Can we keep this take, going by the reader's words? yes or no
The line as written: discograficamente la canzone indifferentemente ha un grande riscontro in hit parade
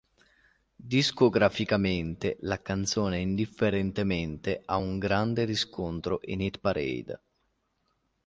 yes